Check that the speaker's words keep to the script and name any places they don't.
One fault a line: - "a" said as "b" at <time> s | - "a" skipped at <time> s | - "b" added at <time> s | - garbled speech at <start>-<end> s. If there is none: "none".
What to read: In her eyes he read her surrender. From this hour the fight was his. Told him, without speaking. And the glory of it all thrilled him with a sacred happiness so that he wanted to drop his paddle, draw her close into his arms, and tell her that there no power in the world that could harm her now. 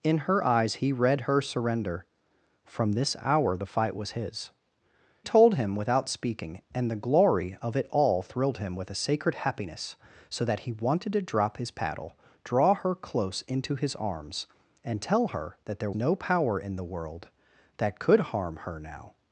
none